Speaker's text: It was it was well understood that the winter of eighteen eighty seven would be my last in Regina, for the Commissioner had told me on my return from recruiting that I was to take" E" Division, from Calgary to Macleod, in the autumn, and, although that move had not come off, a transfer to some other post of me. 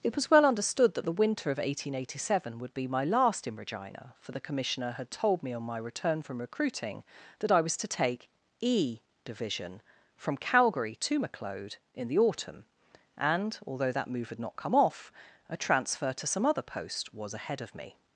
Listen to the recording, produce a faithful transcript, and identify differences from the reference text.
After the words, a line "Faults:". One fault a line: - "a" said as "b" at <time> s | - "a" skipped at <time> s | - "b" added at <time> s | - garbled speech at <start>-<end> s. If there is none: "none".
It was well understood that the winter of eighteen eighty seven would be my last in Regina, for the Commissioner had told me on my return from recruiting that I was to take" E" Division, from Calgary to Macleod, in the autumn, and, although that move had not come off, a transfer to some other post was ahead of me.
Faults:
- "it was" skipped at 0.3 s
- "was ahead" added at 17.1 s